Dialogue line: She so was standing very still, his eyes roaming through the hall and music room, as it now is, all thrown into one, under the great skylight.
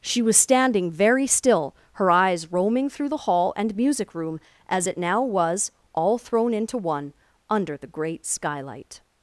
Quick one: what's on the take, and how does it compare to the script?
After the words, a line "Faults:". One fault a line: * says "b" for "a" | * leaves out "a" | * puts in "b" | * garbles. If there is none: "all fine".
She was standing very still, her eyes roaming through the hall and music room, as it now was, all thrown into one, under the great skylight.
Faults:
* leaves out "so"
* says "her" for "his"
* says "was" for "is"